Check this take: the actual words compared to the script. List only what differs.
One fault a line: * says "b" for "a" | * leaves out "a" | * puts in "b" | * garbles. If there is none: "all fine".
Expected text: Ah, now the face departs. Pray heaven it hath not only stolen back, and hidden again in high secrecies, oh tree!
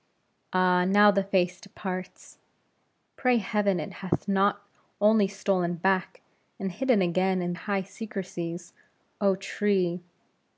all fine